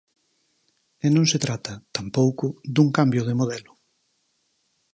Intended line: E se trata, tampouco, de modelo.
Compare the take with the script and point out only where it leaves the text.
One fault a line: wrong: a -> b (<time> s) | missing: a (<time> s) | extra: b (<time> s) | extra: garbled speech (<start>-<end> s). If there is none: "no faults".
extra: non (1.1 s)
extra: dun cambio (2.7 s)